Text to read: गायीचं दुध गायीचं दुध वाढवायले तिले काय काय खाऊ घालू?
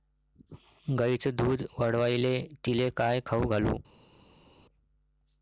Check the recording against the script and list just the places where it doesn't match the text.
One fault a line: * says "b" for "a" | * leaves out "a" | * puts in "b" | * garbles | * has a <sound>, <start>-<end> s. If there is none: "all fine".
* leaves out "गायीचं दुध"
* leaves out "काय"